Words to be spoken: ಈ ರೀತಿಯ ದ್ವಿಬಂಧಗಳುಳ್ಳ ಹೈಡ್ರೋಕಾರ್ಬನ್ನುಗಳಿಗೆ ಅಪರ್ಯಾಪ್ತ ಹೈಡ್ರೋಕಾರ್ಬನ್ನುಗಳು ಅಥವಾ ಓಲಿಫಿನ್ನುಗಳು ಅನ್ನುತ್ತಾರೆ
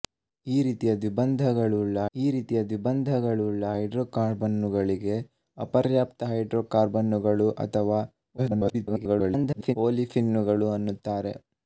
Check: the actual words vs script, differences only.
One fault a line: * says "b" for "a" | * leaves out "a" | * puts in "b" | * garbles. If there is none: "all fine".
* puts in "ಈ ರೀತಿಯ ದ್ವಿಬಂಧಗಳುಳ್ಳ"
* garbles